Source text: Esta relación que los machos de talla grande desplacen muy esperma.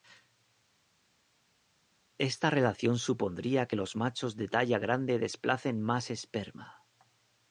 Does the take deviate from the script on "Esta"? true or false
false